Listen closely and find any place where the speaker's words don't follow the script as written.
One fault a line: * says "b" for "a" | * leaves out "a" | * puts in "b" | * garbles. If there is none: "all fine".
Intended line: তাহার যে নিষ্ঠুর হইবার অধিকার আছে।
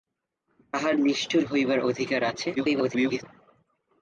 * leaves out "যে"
* garbles